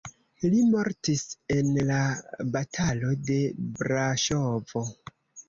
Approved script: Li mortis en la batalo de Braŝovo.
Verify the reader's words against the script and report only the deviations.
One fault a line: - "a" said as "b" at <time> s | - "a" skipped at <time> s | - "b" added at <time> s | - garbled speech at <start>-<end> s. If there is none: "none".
none